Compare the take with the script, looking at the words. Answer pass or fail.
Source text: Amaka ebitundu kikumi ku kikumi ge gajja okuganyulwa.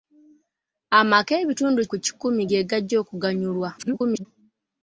fail